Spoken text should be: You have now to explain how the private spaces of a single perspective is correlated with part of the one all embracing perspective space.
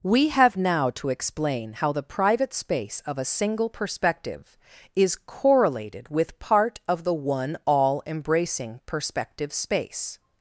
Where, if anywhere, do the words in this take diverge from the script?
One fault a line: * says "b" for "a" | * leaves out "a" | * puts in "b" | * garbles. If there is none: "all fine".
* says "We" for "You"
* says "space" for "spaces"